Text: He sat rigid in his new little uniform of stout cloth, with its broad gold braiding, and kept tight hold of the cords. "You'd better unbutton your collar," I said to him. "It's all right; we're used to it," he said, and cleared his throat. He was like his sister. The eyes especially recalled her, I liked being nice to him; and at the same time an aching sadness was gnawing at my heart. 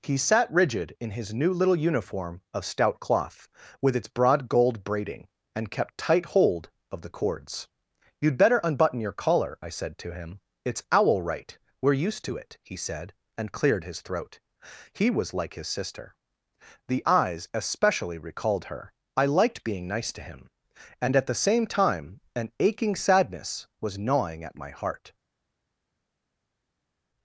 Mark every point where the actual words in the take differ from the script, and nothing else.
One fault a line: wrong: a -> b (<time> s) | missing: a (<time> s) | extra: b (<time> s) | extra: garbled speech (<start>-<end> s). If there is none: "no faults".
wrong: all -> owl (10.9 s)